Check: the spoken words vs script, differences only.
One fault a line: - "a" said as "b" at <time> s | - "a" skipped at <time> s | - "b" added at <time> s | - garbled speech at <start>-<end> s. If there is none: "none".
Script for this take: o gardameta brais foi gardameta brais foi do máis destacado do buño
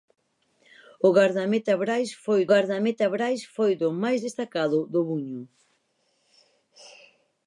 none